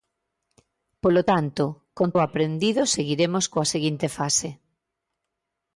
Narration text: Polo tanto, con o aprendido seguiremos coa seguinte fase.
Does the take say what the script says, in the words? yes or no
yes